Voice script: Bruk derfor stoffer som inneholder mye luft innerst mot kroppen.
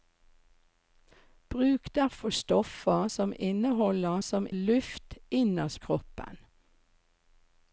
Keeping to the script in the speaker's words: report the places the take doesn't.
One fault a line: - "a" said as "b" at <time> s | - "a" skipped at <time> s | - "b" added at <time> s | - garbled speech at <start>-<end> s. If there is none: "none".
- "mye" said as "som" at 4.2 s
- "mot" skipped at 5.8 s